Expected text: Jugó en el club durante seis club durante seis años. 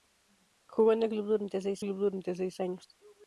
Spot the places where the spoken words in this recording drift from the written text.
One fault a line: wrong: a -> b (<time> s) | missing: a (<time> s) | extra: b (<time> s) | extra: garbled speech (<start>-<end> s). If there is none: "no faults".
no faults